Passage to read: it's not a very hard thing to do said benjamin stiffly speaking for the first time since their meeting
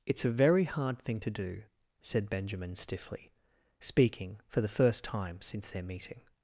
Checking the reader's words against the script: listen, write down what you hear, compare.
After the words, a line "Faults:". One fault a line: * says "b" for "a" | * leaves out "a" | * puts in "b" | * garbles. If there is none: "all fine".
it's a very hard thing to do said benjamin stiffly speaking for the first time since their meeting
Faults:
* leaves out "not"